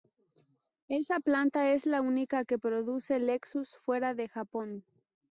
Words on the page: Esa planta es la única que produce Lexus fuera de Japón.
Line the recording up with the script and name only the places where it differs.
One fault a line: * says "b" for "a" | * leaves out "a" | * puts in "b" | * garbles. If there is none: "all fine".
all fine